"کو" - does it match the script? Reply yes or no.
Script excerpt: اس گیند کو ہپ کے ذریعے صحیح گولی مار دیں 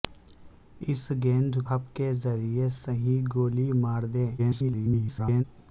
no